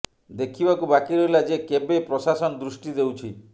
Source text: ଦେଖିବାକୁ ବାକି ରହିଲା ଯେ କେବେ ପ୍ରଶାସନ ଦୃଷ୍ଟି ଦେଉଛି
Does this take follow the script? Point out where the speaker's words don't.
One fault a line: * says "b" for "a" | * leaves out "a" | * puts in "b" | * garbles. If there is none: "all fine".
all fine